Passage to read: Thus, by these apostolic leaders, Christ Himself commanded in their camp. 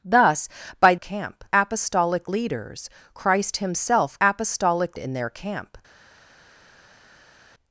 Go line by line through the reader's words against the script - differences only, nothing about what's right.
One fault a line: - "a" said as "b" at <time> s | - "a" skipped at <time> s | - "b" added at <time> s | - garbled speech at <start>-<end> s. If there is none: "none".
- "these" said as "camp" at 1.0 s
- "commanded" said as "apostolic" at 4.2 s